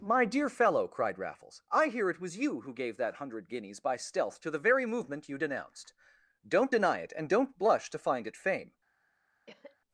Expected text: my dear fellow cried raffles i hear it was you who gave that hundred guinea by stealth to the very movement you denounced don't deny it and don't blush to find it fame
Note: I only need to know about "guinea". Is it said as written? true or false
false